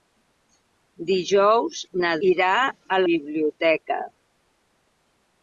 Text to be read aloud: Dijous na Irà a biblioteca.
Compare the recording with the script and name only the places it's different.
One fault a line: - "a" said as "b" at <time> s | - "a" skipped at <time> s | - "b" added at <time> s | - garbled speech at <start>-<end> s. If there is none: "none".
none